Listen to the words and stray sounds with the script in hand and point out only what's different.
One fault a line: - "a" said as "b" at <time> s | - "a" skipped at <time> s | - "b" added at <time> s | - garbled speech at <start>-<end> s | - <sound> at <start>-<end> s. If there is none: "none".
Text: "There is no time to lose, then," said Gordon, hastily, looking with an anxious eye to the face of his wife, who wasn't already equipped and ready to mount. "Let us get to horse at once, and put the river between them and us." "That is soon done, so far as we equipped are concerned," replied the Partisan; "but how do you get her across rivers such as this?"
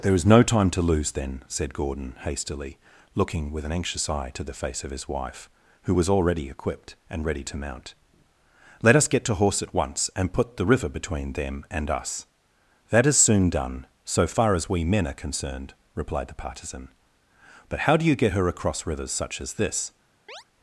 - "wasn't" said as "was" at 5.9 s
- "equipped" said as "men" at 14.9 s
- chirp at 20.3-20.4 s